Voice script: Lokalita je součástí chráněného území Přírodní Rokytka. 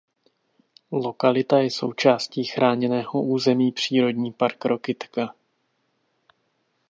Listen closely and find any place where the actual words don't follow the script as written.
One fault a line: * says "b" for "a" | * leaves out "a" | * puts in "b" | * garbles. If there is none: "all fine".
* puts in "park"